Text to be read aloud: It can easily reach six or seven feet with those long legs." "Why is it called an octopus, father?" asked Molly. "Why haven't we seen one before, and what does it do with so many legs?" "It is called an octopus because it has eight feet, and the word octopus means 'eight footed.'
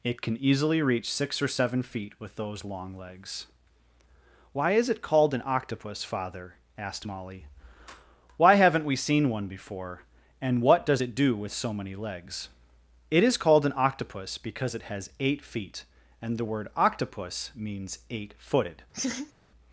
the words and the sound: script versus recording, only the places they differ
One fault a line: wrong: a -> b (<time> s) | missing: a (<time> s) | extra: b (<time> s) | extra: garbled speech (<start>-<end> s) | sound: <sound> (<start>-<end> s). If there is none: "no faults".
sound: laugh (18.9-19.3 s)